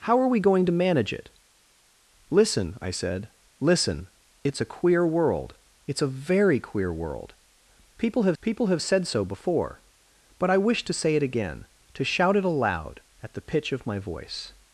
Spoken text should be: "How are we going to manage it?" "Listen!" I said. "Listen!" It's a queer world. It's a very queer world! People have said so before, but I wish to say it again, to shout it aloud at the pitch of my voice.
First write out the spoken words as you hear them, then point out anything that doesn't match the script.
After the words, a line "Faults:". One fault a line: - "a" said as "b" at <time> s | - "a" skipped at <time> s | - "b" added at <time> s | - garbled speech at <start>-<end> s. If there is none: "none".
"How are we going to manage it?" "Listen!" I said. "Listen!" It's a queer world. It's a very queer world! People have people have said so before, but I wish to say it again, to shout it aloud at the pitch of my voice.
Faults:
- "people have" added at 8.4 s